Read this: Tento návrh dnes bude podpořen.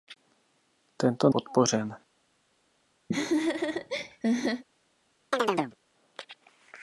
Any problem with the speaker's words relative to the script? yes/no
yes